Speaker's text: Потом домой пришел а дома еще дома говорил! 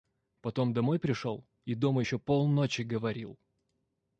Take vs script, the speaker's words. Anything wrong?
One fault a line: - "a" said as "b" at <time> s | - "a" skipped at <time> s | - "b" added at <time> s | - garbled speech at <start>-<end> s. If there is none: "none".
- "а" said as "и" at 1.6 s
- "дома" said as "полночи" at 2.2 s